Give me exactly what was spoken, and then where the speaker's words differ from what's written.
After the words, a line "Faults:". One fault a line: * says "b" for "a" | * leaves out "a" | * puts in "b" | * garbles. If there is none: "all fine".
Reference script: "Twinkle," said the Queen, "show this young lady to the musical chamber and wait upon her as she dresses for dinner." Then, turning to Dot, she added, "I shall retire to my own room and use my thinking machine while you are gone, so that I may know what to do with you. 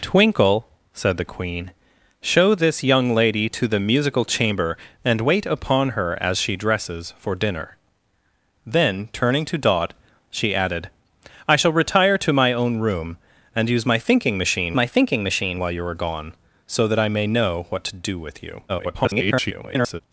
"Twinkle," said the Queen, "show this young lady to the musical chamber and wait upon her as she dresses for dinner." Then, turning to Dot, she added, "I shall retire to my own room and use my thinking machine my thinking machine while you are gone, so that I may know what to do with you. [garbled]
Faults:
* puts in "my thinking machine"
* garbles